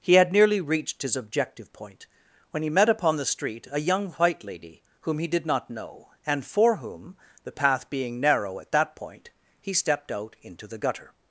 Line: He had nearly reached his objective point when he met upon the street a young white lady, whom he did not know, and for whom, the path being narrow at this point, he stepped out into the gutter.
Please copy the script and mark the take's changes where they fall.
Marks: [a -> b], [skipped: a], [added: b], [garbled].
He had nearly reached his objective point when he met upon the street a young white lady, whom he did not know, and for whom, the path being narrow at [this -> that] point, he stepped out into the gutter.